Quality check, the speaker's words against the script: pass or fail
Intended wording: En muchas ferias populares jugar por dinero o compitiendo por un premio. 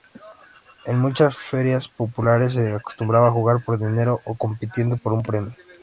fail